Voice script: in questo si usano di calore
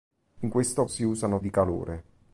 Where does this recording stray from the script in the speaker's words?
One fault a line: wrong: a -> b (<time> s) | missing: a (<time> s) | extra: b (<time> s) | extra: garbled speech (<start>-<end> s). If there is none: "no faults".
no faults